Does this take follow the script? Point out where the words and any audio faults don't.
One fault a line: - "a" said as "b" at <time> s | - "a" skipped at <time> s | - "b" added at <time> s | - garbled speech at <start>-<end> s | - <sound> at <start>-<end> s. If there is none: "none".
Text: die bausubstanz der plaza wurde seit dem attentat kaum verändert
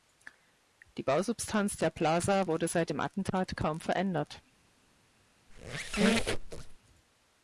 - squeak at 5.5-6.8 s